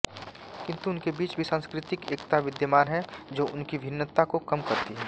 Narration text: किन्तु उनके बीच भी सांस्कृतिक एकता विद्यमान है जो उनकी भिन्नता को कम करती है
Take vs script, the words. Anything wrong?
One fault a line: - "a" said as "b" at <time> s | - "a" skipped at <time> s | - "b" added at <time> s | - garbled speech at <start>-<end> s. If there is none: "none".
none